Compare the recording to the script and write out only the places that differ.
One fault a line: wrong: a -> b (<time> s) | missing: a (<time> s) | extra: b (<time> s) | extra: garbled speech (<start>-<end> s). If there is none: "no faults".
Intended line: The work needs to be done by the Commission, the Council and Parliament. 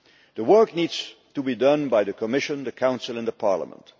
no faults